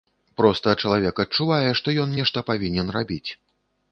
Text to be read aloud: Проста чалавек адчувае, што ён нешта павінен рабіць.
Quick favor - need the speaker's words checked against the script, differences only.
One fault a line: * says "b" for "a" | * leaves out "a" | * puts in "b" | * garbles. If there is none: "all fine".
all fine